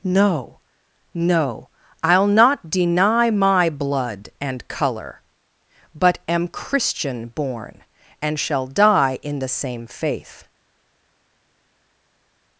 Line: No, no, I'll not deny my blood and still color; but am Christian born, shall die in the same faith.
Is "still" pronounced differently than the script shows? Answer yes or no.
yes